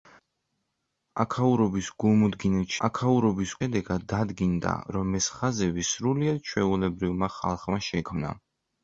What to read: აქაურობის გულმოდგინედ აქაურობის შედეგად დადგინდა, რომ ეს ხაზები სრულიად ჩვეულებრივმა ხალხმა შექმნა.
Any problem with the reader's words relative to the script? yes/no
no